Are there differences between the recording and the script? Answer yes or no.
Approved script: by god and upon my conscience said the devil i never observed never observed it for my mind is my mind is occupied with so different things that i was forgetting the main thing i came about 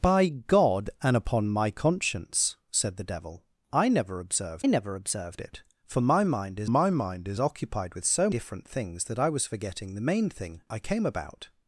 no